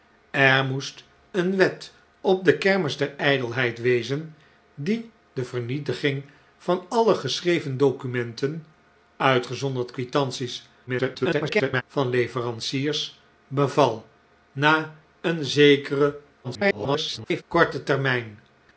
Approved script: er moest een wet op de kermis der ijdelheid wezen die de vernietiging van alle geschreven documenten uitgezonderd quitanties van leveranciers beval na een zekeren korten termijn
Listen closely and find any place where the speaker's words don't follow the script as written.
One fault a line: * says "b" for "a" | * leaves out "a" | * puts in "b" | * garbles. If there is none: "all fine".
* garbles
* garbles